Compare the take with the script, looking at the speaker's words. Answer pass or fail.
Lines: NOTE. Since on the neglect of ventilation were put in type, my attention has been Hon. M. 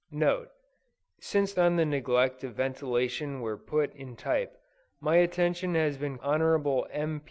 pass